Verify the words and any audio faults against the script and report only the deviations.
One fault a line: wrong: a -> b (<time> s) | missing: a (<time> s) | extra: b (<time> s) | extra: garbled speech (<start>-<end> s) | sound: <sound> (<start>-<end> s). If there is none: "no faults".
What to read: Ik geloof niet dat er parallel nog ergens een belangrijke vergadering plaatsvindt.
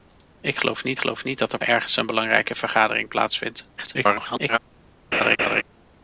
extra: geloof niet (1.0 s)
missing: parallel nog (1.6 s)
extra: garbled speech (3.8-4.6 s)
sound: laugh (5.1-5.6 s)